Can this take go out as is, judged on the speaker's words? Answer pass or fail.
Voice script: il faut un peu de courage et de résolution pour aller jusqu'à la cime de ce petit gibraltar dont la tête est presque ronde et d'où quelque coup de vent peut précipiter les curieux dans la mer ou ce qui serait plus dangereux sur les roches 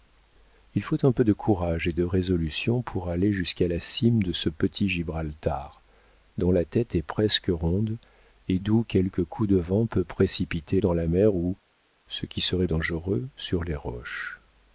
fail